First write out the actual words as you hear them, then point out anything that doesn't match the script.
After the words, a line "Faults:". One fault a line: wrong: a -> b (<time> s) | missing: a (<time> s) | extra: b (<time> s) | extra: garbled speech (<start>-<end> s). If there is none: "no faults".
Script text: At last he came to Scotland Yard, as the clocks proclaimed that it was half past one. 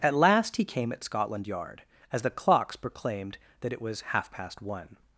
At last he came at Scotland Yard, as the clocks proclaimed that it was half past one.
Faults:
wrong: to -> at (0.9 s)